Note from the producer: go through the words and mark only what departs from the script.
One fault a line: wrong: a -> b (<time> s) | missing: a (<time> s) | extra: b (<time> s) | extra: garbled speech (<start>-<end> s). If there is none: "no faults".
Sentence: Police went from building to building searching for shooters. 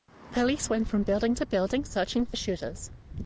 no faults